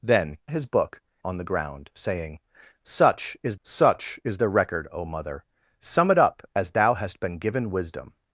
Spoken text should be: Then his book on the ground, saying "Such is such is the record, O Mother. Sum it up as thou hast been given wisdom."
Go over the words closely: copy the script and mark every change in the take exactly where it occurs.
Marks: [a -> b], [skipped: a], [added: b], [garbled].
Then his book on the ground, saying "Such is such is the record, O Mother. Sum it up as thou hast been given wisdom."